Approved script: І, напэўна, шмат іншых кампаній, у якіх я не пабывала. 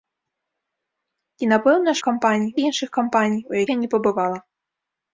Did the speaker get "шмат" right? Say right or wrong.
wrong